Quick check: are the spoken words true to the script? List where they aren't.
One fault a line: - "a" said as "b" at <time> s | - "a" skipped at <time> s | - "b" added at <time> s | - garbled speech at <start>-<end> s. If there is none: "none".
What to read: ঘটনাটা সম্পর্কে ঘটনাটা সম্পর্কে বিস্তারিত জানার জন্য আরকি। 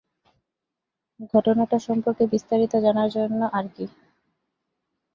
- "ঘটনাটা সম্পর্কে" skipped at 2.2 s